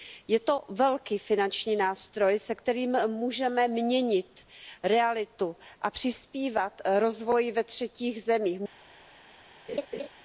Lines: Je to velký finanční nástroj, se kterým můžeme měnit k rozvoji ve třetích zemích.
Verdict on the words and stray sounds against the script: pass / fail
fail